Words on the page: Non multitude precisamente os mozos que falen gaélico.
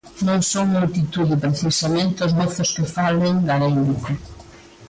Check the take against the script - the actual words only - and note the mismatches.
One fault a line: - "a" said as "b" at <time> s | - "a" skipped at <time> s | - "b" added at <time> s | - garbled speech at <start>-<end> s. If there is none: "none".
- "son" added at 0.5 s